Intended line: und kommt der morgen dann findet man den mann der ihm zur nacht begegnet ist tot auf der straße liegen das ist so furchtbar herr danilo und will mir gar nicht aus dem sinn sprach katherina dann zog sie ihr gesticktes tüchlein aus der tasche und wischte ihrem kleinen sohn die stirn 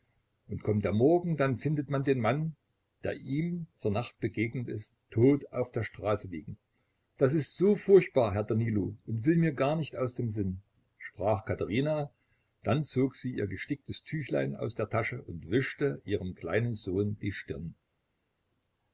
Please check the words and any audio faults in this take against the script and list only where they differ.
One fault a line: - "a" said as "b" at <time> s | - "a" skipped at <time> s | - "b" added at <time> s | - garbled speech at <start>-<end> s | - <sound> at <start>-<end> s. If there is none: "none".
none